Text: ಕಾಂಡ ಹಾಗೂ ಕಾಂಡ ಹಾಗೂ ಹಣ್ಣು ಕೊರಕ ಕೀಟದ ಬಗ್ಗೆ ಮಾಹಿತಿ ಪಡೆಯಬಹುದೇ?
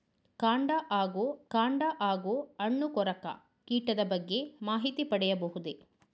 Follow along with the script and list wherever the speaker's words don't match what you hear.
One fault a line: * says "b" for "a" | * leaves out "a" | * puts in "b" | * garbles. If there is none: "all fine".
all fine